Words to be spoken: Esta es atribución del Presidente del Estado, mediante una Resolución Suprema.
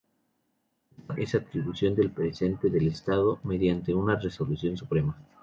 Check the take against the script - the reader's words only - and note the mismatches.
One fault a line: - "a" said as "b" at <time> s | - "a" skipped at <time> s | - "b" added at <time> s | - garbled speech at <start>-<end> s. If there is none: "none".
none